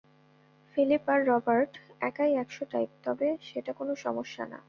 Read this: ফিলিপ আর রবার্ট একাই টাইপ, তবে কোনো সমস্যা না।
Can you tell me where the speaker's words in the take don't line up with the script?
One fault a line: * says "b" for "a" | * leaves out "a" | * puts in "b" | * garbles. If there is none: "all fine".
* puts in "একশো"
* puts in "সেটা"